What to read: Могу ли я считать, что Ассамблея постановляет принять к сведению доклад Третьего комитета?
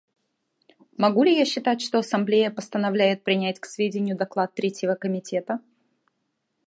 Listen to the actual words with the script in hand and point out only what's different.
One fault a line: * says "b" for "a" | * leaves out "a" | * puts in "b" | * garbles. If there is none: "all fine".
all fine